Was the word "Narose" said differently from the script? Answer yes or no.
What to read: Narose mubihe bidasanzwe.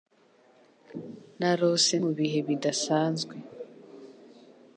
no